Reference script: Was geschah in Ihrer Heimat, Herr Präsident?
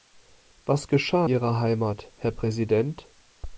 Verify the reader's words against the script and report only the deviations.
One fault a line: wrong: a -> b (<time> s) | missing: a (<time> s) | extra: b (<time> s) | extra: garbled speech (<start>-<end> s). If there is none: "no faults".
missing: in (1.3 s)